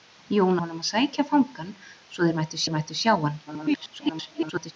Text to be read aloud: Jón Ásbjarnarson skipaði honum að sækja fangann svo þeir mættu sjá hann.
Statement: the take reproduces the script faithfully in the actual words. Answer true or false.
false